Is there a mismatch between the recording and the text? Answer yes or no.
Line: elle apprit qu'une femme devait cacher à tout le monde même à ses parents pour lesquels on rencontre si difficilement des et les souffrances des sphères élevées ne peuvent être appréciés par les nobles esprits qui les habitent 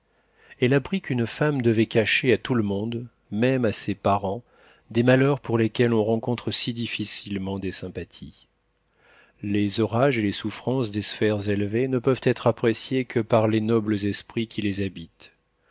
yes